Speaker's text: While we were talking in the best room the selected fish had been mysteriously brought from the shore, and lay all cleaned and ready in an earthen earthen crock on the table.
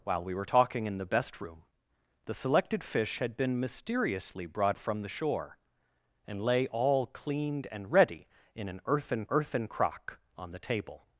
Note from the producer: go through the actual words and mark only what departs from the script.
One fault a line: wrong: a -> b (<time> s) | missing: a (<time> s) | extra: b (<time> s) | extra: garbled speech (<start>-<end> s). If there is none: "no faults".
no faults